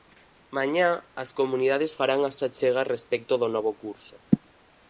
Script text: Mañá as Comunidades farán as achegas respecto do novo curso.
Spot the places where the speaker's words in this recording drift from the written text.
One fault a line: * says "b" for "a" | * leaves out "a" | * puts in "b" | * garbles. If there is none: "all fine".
all fine